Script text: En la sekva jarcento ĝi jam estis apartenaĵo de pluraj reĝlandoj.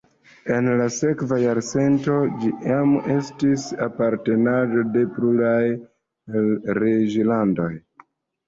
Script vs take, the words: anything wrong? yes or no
no